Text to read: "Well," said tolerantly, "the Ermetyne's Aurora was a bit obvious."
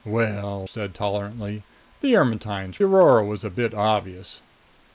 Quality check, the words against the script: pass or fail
pass